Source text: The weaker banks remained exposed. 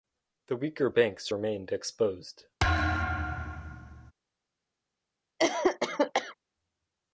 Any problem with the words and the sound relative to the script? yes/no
yes